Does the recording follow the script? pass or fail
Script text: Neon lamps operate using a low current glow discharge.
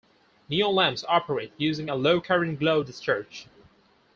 pass